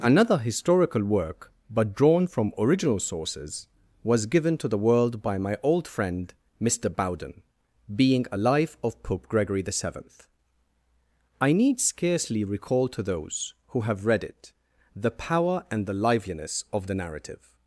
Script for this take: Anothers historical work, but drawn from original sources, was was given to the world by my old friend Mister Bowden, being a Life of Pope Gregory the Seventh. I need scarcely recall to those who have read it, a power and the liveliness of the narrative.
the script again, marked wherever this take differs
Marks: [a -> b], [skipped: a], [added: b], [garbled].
[Anothers -> Another] historical work, but drawn from original sources, was [skipped: was] given to the world by my old friend Mister Bowden, being a Life of Pope Gregory the Seventh. I need scarcely recall to those who have read it, [a -> the] power and the liveliness of the narrative.